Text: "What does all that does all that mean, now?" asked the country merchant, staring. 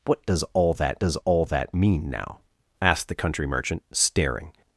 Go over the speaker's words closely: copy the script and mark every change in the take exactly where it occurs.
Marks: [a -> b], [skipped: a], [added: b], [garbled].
"What does all that does all that mean, now?" asked the country merchant, staring.